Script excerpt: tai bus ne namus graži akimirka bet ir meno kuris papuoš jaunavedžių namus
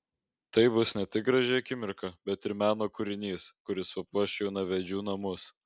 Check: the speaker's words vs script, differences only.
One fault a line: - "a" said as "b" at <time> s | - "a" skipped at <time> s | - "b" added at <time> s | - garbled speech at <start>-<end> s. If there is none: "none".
- "namus" said as "tik" at 1.2 s
- "kūrinys" added at 3.0 s